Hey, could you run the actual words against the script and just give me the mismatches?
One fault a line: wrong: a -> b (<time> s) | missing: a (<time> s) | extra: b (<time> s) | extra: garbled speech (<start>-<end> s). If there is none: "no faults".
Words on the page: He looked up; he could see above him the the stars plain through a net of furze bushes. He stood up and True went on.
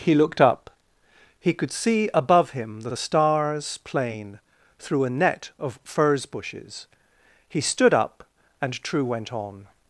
no faults